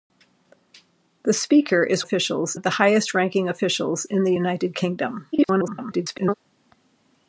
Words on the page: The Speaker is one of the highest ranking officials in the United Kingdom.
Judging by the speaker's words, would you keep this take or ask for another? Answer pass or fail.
fail